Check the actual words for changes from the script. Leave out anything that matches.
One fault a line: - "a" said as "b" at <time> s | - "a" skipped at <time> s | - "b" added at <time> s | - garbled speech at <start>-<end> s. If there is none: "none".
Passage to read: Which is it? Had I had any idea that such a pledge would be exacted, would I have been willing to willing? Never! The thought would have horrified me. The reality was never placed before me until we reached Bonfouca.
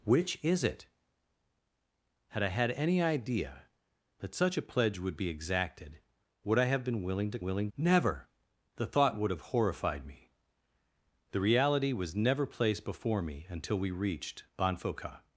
none